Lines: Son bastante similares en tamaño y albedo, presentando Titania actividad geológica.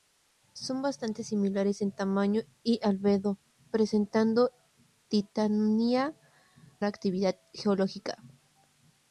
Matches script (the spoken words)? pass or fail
pass